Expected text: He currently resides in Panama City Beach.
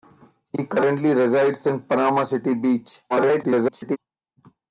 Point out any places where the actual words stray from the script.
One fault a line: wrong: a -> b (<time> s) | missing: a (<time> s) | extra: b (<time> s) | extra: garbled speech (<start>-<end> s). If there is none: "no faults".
extra: garbled speech (3.1-4.0 s)